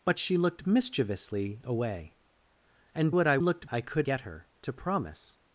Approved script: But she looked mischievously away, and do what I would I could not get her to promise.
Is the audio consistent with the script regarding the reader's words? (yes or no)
no